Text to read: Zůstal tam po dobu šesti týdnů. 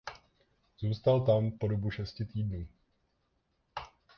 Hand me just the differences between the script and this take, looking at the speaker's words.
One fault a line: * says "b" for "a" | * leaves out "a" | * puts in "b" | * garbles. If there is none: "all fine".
all fine